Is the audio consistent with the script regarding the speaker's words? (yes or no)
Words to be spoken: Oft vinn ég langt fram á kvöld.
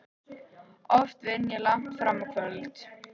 yes